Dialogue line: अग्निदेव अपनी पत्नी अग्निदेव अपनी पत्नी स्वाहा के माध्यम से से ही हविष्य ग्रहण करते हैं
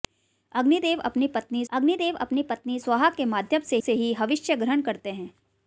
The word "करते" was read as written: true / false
true